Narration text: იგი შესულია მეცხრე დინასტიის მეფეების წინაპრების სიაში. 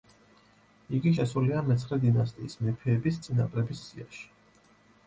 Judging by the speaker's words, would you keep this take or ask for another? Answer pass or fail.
pass